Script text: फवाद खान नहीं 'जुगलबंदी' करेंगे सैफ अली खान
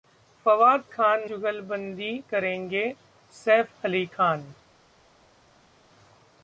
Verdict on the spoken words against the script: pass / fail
fail